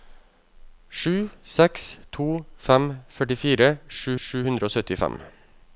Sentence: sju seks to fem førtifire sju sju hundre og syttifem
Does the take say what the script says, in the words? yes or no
yes